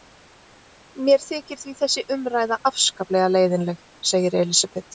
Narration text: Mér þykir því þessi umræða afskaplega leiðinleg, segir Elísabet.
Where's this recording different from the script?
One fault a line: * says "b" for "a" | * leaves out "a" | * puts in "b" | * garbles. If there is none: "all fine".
all fine